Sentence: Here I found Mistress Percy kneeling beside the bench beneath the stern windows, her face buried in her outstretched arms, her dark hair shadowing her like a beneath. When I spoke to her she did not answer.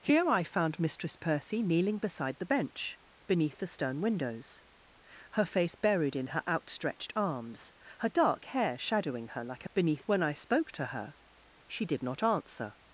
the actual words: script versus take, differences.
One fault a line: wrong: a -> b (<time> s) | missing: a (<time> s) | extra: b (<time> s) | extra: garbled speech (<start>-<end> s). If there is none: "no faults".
no faults